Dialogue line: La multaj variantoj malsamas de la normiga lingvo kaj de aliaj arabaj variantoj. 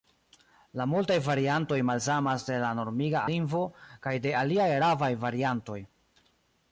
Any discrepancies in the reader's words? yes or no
no